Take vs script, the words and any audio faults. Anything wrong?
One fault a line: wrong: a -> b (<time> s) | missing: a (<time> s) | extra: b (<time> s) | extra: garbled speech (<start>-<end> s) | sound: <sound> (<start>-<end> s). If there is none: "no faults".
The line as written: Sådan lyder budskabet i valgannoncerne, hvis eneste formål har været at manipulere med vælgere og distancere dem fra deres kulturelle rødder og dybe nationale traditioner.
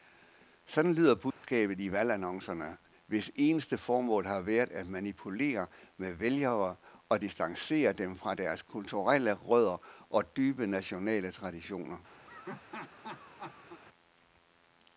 sound: dropout (1.3-1.4 s)
sound: laugh (12.2-13.8 s)